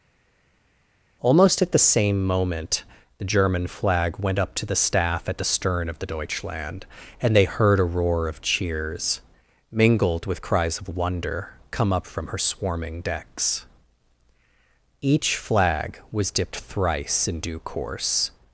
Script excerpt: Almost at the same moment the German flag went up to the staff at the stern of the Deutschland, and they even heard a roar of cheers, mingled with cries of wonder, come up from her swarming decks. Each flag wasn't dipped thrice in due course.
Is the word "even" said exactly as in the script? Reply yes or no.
no